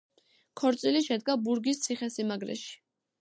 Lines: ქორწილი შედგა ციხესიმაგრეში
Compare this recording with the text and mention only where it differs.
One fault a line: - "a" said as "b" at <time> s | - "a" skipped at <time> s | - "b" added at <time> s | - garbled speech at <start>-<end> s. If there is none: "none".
- "ბურგის" added at 1.5 s